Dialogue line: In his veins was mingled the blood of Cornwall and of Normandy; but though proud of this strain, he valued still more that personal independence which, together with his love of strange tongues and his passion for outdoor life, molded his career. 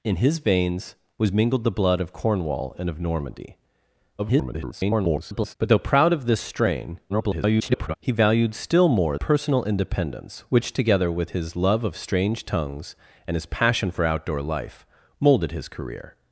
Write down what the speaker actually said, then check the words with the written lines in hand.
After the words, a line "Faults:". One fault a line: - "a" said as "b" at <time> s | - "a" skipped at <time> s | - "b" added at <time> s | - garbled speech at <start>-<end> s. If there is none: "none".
In his veins was mingled the blood of Cornwall and of Normandy; [garbled] but though proud of this strain, [garbled] he valued still more personal independence which, together with his love of strange tongues and his passion for outdoor life, molded his career.
Faults:
- garbled speech at 4.2-5.5 s
- garbled speech at 7.1-8.0 s
- "that" skipped at 9.2 s